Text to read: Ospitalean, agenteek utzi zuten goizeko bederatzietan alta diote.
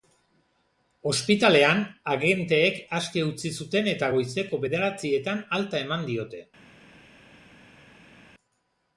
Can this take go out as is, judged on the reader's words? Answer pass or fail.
fail